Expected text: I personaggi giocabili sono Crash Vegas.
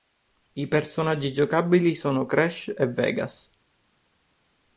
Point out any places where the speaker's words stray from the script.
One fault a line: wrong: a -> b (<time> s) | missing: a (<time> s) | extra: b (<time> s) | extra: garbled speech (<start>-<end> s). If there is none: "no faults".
extra: e (2.7 s)